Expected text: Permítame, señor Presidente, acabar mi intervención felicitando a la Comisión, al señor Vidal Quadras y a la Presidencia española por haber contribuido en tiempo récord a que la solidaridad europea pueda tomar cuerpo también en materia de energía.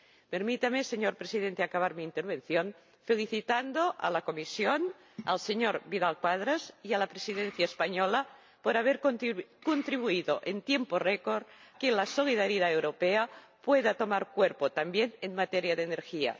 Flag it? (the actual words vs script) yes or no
yes